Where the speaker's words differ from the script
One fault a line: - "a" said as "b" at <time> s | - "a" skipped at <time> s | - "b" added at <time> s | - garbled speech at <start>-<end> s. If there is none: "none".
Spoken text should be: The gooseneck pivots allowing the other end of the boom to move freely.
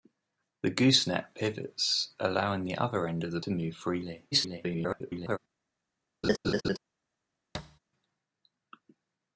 - "boom" skipped at 3.4 s
- garbled speech at 4.3-5.4 s